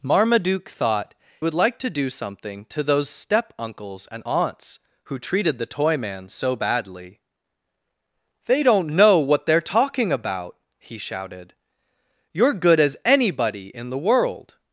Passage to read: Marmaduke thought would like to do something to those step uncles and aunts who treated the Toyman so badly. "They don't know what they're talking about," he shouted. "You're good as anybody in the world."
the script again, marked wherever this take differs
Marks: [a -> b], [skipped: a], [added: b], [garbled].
Marmaduke thought would like to do something to those step uncles and aunts who treated the Toyman so badly. "They don't know what they're talking about," he shouted. "You're good as anybody in the world."